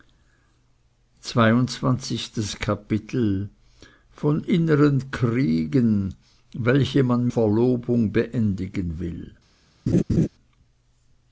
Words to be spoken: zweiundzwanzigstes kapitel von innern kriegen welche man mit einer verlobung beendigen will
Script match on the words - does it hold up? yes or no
no